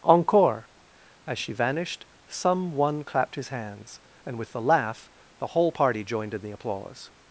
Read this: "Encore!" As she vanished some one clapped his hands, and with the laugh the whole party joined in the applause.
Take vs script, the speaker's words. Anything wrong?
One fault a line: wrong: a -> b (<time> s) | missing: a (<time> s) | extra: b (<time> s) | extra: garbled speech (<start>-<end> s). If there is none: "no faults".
no faults